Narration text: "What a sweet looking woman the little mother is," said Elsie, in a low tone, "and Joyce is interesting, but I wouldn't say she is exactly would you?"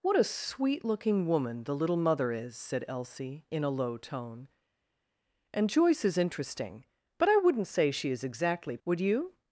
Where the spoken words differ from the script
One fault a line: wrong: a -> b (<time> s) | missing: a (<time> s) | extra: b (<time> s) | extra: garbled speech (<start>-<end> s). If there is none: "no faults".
no faults